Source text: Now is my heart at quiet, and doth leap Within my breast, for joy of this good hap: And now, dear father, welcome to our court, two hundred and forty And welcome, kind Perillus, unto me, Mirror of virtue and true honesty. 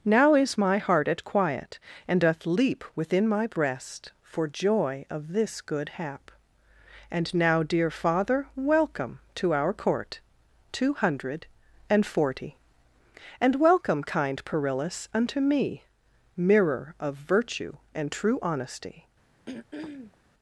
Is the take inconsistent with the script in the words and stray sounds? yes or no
yes